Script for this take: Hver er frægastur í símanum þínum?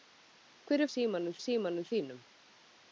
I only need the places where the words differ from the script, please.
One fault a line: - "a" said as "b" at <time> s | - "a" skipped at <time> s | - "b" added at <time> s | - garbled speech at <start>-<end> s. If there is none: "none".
- "frægastur" said as "símanum" at 0.9 s